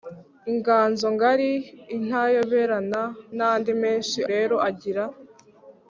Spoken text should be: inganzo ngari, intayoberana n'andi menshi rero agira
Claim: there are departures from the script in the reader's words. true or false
false